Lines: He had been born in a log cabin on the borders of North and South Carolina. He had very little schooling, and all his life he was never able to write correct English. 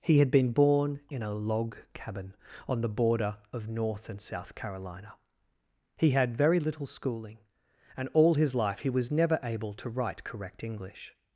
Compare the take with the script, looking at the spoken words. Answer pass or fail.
fail